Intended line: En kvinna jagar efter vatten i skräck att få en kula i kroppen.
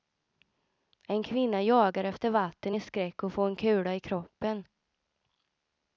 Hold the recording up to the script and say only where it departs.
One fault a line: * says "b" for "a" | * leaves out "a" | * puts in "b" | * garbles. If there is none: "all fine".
all fine